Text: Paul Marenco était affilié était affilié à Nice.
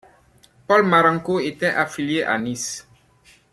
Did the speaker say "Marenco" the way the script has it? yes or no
yes